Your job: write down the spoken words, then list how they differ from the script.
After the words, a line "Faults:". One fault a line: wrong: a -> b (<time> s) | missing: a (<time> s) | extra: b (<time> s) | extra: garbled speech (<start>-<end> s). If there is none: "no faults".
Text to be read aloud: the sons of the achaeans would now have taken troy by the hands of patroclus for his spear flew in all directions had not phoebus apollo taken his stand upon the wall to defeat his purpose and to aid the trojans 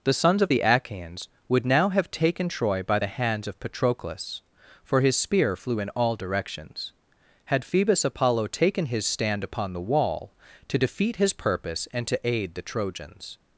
the sons of the achaeans would now have taken troy by the hands of patroclus for his spear flew in all directions had phoebus apollo taken his stand upon the wall to defeat his purpose and to aid the trojans
Faults:
missing: not (7.6 s)